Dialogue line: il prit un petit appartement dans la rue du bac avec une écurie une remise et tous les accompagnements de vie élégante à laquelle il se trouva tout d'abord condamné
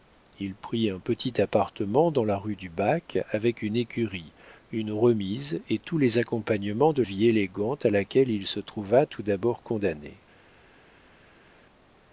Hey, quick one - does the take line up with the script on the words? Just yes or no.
yes